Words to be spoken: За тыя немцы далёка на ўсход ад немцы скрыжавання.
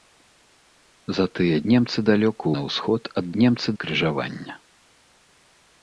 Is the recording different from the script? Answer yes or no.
no